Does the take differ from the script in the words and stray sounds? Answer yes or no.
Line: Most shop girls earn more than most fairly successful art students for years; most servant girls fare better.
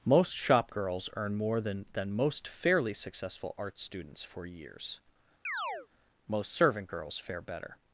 yes